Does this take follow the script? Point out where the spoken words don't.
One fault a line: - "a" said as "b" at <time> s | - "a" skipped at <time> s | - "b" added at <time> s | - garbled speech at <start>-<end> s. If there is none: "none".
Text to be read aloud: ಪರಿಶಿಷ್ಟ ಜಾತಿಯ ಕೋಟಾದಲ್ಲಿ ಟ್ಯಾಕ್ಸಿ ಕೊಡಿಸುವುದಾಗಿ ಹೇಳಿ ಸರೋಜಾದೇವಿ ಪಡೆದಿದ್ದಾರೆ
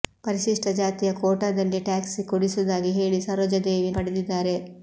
none